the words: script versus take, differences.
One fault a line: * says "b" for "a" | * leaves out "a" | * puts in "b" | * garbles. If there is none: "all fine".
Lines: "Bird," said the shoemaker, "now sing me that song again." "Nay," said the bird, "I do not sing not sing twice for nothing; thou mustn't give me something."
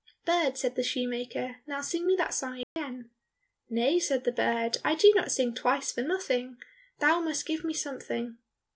* leaves out "not sing"
* says "must" for "mustn't"